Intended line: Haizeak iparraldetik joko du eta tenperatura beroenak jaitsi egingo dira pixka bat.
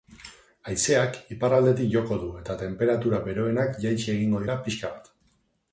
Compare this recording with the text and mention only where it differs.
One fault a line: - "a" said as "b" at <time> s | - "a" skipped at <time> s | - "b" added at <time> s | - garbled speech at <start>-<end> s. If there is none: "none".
none